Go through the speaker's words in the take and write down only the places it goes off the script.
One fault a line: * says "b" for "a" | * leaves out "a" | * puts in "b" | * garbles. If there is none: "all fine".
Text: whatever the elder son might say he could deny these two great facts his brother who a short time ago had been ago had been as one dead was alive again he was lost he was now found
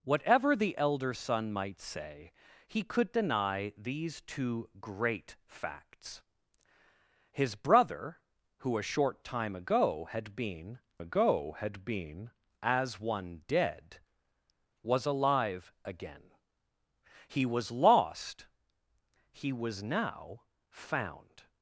all fine